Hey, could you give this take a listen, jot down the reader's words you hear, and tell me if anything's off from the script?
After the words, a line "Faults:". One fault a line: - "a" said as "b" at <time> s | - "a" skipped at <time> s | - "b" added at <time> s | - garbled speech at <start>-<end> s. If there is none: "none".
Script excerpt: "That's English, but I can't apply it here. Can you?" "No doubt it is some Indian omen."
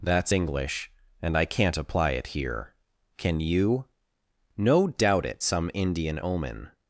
"That's English, and I can't apply it here. Can you?" "No doubt it some Indian omen."
Faults:
- "but" said as "and" at 1.2 s
- "is" skipped at 5.4 s